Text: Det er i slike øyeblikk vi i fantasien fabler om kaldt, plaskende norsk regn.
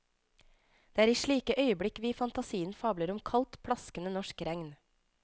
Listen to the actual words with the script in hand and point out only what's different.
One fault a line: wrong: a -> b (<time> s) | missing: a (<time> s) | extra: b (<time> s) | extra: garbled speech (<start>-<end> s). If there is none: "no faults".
no faults